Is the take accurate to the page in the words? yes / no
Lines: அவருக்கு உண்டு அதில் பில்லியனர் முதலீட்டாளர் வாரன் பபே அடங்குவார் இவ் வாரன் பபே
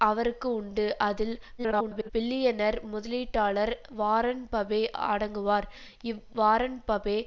no